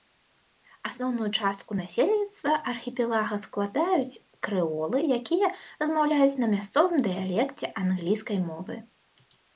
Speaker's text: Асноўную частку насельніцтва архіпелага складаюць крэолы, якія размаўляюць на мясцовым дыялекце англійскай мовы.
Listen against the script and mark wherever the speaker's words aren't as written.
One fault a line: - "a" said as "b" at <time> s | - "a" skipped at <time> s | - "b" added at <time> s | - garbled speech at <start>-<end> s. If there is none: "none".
none